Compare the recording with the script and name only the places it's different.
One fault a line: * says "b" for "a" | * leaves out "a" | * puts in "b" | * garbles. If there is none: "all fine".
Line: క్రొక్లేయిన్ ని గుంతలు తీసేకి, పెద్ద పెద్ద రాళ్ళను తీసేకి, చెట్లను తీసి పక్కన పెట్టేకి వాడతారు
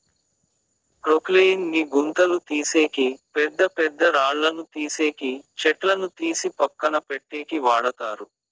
all fine